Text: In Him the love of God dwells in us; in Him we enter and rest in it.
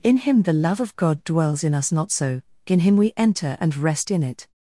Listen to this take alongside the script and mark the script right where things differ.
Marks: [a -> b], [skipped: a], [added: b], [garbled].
In Him the love of God dwells in us; [added: not so] in Him we enter and rest in it.